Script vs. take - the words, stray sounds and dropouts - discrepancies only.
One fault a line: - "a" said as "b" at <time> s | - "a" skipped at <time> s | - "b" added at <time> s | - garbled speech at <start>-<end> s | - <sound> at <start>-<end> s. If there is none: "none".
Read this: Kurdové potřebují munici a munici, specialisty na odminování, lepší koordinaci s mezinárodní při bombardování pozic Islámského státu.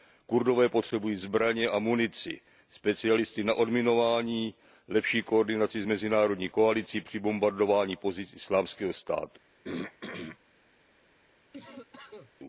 - "munici" said as "zbraně" at 1.1 s
- "koalicí" added at 6.5 s
- throat clearing at 9.6-10.4 s
- cough at 11.5-12.3 s